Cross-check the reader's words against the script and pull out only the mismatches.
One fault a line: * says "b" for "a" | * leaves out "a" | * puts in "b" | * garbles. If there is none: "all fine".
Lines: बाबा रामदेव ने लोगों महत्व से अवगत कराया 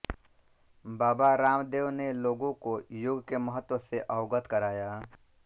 * puts in "को योग के"